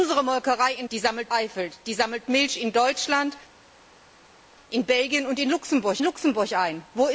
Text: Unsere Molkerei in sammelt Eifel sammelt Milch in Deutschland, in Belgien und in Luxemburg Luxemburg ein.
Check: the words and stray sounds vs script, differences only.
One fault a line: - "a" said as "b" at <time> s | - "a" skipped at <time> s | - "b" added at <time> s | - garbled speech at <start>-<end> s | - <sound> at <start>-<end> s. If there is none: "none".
none